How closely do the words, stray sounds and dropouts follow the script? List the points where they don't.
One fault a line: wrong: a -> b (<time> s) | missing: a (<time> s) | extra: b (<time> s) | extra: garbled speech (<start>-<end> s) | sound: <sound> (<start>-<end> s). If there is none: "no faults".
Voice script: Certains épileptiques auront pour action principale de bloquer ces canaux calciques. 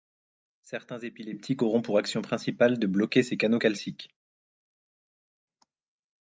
no faults